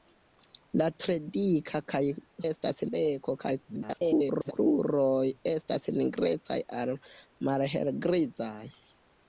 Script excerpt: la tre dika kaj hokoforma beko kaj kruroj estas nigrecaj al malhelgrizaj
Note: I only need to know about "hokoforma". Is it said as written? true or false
false